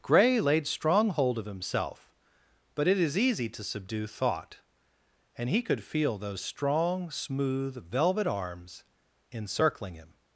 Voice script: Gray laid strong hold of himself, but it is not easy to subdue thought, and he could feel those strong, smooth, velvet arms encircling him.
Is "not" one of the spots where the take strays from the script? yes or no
yes